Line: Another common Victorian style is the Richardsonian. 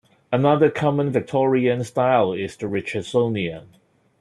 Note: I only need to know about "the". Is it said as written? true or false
true